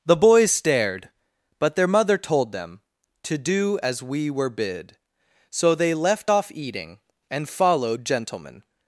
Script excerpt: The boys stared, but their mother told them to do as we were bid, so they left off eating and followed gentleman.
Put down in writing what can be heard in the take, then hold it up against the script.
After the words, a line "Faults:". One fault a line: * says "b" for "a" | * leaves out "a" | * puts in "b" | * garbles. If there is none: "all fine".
The boys stared, but their mother told them to do as we were bid, so they left off eating and followed gentleman.
Faults:
all fine